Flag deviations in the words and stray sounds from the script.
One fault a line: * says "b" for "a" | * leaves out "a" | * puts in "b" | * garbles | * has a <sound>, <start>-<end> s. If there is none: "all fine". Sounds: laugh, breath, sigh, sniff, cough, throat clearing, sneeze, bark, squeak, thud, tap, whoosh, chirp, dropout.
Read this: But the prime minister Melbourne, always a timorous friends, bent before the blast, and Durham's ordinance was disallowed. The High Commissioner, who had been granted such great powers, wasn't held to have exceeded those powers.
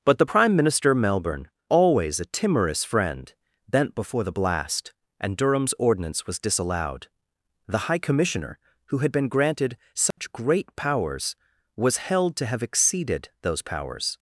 * says "friend" for "friends"
* has a dropout, 10.1-10.2 s
* says "was" for "wasn't"